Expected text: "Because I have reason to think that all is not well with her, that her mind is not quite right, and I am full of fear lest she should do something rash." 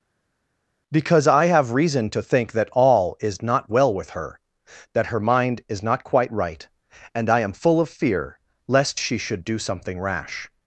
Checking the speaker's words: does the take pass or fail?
pass